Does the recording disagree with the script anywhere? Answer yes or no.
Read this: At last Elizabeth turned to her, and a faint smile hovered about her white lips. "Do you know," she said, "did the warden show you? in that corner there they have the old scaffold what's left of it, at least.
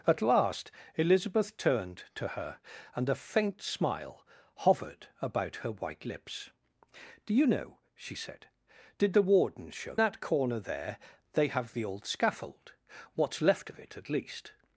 yes